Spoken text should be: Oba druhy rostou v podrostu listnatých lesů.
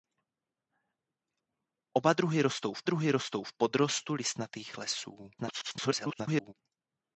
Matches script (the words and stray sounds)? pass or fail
fail